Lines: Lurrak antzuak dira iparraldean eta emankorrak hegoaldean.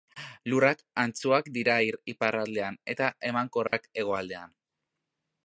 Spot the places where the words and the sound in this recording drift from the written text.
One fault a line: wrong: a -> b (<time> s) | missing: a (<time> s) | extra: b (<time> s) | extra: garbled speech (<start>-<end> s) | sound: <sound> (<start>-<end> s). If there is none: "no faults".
sound: dropout (3.7-3.7 s)